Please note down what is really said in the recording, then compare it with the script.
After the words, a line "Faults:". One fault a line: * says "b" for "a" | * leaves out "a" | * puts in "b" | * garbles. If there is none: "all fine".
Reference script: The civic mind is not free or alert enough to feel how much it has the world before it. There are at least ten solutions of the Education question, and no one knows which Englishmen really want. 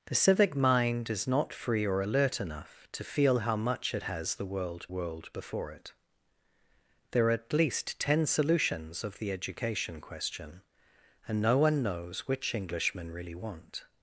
The civic mind is not free or alert enough to feel how much it has the world world before it. There are at least ten solutions of the Education question, and no one knows which Englishmen really want.
Faults:
* puts in "world"